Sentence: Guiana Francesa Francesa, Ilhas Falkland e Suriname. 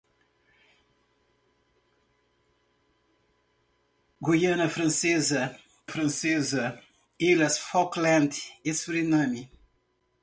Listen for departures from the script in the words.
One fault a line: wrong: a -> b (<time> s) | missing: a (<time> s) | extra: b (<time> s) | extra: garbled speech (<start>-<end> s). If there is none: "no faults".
no faults